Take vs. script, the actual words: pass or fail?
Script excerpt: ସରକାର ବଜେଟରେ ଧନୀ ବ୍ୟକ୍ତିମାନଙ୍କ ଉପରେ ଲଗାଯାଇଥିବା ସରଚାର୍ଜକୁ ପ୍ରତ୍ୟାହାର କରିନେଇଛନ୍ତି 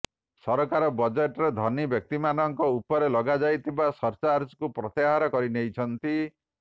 pass